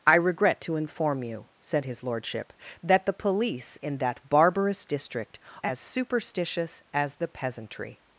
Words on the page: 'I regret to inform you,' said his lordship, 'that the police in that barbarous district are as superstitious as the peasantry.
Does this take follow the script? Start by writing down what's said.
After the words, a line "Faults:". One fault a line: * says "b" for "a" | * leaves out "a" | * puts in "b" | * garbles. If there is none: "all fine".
'I regret to inform you,' said his lordship, 'that the police in that barbarous district as superstitious as the peasantry.
Faults:
* leaves out "are"